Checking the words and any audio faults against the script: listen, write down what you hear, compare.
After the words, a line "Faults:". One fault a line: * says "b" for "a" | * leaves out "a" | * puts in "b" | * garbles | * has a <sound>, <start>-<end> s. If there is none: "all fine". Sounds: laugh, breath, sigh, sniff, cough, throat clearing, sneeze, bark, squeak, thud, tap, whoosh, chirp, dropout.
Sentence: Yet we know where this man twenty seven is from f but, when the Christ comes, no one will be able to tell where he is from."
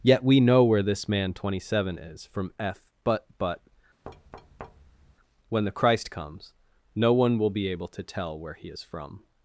Yet we know where this man twenty seven is from f but but, when the Christ comes, no one will be able to tell where he is from."
Faults:
* puts in "but"
* has a thud, 4.0-5.1 s